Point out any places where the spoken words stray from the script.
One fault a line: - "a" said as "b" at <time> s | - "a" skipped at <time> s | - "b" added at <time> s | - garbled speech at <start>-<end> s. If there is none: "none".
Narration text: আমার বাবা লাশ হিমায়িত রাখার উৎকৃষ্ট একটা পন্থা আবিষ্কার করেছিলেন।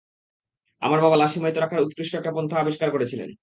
none